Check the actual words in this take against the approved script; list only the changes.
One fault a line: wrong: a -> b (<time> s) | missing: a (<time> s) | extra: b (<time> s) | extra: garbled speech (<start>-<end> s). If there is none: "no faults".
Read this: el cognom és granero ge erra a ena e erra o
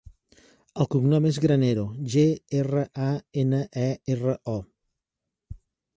no faults